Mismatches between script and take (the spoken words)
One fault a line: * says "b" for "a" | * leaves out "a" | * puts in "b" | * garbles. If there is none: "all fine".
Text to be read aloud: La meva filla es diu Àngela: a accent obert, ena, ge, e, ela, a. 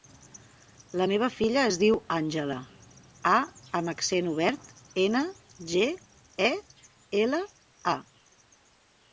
* puts in "amb"